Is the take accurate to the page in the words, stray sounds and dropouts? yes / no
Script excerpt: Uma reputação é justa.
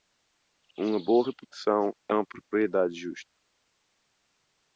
no